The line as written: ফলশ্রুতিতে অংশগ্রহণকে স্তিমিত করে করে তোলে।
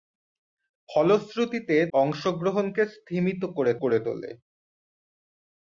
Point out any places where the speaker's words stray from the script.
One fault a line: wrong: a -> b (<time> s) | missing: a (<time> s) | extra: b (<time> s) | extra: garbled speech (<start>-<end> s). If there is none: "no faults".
no faults